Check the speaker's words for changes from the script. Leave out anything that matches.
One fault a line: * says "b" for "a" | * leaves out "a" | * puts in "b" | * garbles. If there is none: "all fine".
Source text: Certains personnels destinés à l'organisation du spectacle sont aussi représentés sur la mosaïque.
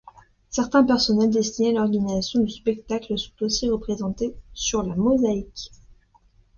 all fine